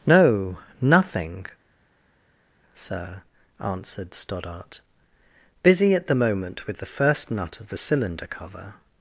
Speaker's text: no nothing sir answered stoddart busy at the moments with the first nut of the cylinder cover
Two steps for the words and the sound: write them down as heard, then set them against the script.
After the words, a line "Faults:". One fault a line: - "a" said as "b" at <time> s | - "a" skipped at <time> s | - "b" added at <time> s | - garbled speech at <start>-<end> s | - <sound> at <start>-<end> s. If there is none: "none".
no nothing sir answered stoddart busy at the moment with the first nut of the cylinder cover
Faults:
- "moments" said as "moment" at 6.1 s